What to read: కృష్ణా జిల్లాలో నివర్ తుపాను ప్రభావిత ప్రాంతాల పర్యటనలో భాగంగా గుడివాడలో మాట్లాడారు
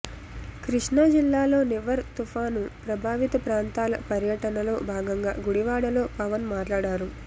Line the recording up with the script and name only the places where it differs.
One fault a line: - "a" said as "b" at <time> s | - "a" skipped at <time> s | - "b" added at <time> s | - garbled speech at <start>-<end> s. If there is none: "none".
- "పవన్" added at 6.2 s